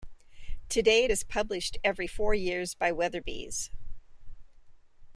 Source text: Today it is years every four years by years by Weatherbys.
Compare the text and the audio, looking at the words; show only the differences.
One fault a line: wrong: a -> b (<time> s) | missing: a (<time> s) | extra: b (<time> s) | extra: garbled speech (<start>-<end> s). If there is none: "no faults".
wrong: years -> published (1.2 s)
missing: years by (2.9 s)